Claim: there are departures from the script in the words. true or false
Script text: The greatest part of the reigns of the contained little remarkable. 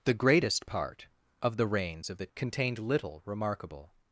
false